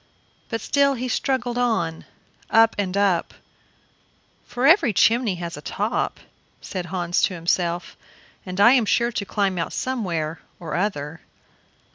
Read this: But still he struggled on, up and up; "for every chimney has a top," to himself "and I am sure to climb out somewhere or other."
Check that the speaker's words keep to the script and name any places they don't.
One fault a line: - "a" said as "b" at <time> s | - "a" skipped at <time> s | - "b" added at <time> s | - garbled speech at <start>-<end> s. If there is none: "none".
- "said Hans" added at 6.6 s